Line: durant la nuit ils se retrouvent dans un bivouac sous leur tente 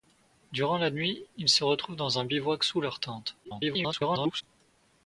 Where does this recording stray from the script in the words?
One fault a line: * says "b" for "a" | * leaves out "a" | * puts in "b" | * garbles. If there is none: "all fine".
* garbles